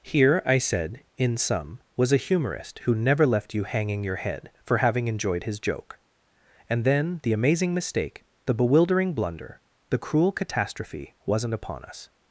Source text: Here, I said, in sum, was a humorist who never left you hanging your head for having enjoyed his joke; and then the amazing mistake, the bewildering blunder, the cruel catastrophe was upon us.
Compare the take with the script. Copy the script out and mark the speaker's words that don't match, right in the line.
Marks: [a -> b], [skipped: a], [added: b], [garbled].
Here, I said, in sum, was a humorist who never left you hanging your head for having enjoyed his joke; and then the amazing mistake, the bewildering blunder, the cruel catastrophe [was -> wasn't] upon us.